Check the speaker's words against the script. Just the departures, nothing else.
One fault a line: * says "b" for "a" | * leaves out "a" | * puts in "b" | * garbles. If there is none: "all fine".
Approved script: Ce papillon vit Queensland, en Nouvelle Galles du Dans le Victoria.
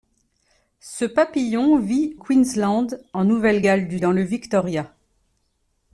all fine